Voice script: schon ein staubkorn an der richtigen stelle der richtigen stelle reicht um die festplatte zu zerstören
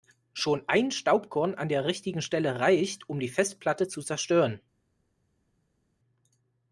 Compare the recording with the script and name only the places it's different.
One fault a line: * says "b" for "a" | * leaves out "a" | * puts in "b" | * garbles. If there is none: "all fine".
* leaves out "der richtigen stelle"